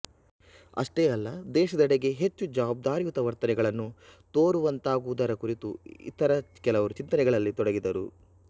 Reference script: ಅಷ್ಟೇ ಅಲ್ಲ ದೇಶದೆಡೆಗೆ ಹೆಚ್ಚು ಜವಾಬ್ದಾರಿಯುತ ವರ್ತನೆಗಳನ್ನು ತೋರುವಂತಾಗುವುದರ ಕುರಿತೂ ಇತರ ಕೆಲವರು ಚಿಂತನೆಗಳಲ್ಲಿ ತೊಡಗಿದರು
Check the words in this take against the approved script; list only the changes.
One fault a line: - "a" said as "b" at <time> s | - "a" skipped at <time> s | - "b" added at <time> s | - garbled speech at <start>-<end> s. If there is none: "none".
none